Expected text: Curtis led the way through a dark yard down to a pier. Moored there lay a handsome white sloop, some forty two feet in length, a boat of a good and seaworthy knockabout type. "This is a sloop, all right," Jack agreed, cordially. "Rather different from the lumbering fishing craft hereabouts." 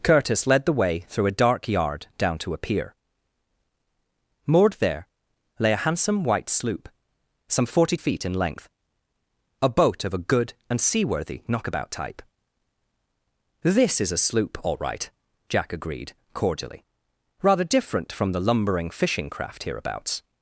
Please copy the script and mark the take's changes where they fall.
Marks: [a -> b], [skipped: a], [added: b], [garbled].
Curtis led the way through a dark yard down to a pier. Moored there lay a handsome white sloop, some forty [skipped: two] feet in length, a boat of a good and seaworthy knockabout type. "This is a sloop, all right," Jack agreed, cordially. "Rather different from the lumbering fishing craft hereabouts."